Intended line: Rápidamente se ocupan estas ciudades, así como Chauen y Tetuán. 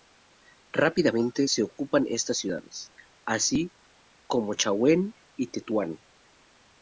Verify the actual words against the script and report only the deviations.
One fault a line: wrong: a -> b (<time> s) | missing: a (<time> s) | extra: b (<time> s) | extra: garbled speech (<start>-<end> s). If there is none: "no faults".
no faults